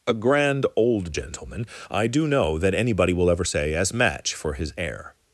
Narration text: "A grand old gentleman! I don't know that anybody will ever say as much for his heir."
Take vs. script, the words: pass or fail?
fail